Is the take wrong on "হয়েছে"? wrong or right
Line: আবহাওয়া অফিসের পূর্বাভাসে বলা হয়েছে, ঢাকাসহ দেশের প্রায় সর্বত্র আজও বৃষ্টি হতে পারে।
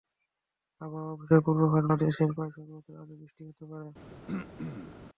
wrong